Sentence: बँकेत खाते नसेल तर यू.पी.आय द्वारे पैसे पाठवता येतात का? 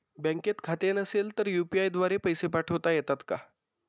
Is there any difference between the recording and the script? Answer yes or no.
no